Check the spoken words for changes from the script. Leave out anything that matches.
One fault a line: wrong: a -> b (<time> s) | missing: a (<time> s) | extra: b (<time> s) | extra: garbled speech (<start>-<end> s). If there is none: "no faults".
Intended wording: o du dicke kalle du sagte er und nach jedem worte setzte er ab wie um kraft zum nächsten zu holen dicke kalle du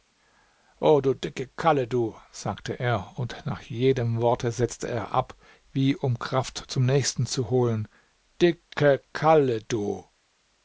no faults